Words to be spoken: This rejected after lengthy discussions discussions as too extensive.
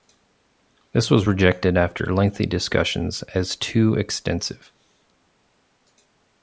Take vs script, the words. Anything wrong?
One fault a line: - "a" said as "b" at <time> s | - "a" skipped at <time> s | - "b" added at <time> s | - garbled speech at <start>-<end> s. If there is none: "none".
- "was" added at 1.1 s
- "discussions" skipped at 3.2 s